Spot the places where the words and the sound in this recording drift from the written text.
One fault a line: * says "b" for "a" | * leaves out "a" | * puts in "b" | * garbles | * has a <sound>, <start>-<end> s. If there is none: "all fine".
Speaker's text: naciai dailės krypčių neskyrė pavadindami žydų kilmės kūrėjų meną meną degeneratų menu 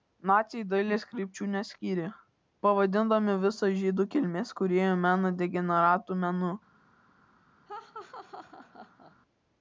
* puts in "visą"
* leaves out "meną"
* has a laugh, 7.7-9.1 s